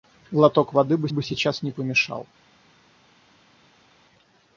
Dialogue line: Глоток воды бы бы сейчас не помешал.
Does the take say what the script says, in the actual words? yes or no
yes